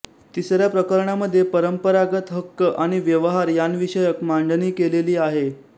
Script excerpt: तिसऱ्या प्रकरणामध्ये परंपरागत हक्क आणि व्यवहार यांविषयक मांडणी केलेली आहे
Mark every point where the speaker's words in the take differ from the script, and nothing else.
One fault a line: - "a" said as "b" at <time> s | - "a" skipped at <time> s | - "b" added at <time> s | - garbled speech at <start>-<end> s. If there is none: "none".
none